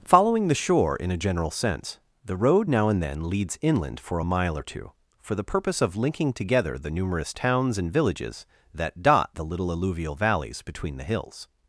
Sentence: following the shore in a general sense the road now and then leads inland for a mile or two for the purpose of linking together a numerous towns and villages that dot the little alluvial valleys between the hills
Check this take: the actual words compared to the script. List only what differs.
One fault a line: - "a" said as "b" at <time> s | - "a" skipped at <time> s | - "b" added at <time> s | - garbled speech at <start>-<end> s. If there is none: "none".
- "a" said as "the" at 6.8 s